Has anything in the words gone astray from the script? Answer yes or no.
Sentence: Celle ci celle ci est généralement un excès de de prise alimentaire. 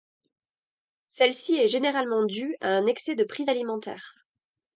yes